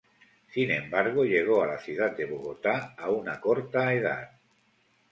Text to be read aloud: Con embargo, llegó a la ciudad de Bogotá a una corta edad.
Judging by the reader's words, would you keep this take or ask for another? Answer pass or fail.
fail